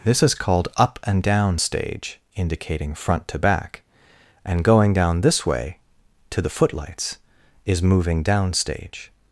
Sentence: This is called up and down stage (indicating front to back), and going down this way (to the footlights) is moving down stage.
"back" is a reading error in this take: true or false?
false